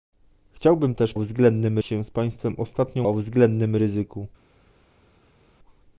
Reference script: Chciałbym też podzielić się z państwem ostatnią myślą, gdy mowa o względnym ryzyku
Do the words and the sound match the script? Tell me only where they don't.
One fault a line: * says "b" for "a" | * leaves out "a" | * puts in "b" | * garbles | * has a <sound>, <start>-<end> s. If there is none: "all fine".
* says "względnym" for "podzielić"
* leaves out "myślą gdy mowa"